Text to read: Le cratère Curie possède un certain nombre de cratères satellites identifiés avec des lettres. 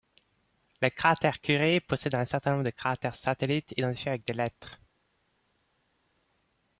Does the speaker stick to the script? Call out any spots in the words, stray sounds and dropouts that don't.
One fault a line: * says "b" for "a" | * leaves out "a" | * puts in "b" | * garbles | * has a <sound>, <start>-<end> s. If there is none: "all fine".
all fine